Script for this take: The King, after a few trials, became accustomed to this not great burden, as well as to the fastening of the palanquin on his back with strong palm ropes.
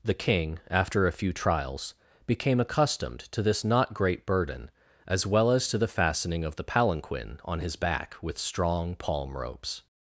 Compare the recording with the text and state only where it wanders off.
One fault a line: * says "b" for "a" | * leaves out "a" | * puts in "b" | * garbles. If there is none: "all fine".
all fine